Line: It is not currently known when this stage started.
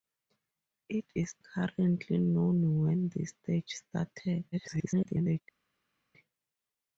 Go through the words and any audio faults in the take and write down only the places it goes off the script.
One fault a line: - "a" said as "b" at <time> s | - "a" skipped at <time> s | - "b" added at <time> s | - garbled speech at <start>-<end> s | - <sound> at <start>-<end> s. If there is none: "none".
- "not" skipped at 1.4 s
- garbled speech at 4.5-5.4 s